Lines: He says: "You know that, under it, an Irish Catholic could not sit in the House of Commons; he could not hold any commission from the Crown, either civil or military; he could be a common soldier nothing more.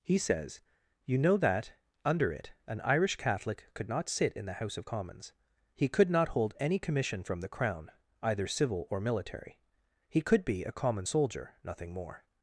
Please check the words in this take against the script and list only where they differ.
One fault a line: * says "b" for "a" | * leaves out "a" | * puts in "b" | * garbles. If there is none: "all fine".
all fine